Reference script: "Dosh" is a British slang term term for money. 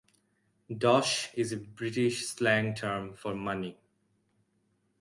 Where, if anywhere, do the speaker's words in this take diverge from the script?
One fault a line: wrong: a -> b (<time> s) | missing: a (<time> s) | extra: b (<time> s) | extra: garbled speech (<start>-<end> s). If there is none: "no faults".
missing: term (3.1 s)